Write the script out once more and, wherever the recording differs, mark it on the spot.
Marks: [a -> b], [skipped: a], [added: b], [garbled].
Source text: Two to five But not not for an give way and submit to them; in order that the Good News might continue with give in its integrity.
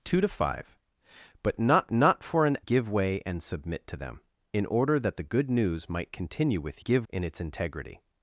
Two to five But not not for an give way and submit to them; in order that the Good News might continue with give in its integrity.